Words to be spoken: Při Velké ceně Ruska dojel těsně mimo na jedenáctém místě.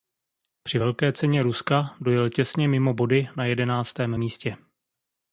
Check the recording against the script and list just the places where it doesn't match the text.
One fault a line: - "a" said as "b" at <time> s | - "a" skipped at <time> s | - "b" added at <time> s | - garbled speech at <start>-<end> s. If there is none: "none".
- "body" added at 2.9 s